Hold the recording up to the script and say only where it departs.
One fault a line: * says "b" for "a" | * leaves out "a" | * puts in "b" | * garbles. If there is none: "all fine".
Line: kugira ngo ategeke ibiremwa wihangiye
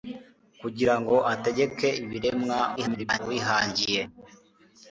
* garbles